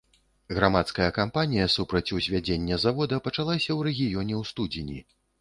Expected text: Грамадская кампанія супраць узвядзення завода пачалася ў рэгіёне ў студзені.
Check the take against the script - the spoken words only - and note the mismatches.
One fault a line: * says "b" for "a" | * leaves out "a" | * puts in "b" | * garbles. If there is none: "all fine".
all fine